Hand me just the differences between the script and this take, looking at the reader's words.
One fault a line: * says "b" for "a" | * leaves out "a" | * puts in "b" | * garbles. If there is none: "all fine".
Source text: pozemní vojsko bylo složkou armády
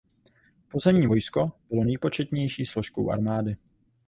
* puts in "nejpočetnější"